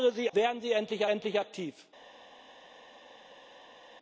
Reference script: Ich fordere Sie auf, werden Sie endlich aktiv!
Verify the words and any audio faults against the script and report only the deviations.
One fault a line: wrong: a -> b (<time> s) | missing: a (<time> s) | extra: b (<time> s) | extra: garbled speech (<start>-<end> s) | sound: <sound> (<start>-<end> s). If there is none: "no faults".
missing: auf (0.3 s)
extra: endlich (1.1 s)